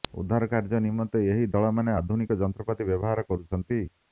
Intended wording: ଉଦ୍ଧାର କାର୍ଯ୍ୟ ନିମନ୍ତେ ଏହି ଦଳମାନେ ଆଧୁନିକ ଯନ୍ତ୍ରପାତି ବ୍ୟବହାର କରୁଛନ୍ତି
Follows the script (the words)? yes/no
yes